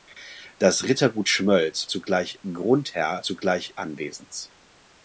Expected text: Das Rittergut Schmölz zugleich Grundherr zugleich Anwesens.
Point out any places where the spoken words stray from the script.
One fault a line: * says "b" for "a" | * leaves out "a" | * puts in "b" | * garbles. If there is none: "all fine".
all fine